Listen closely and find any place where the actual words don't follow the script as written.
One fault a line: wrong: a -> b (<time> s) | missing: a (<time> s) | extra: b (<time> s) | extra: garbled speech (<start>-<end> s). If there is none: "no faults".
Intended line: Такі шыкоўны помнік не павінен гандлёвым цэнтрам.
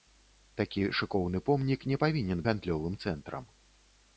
no faults